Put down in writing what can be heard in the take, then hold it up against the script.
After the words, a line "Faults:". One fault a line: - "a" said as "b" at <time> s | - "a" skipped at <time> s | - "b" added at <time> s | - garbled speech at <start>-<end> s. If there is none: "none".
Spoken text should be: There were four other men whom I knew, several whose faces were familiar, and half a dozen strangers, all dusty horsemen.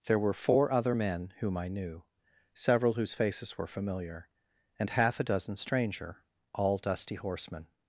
There were four other men whom I knew, several whose faces were familiar, and half a dozen stranger, all dusty horsemen.
Faults:
- "strangers" said as "stranger" at 5.6 s